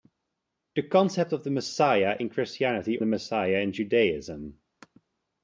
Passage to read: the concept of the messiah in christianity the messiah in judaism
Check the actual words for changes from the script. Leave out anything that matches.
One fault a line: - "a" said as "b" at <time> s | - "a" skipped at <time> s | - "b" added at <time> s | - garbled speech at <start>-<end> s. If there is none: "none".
none